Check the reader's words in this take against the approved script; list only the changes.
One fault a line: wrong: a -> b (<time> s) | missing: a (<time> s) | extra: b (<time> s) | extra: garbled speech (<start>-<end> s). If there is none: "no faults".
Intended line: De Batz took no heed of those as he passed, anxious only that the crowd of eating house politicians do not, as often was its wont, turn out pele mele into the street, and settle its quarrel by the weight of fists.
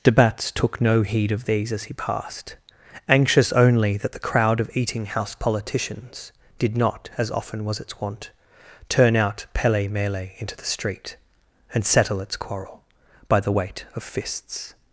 wrong: those -> these (1.4 s)
wrong: do -> did (6.6 s)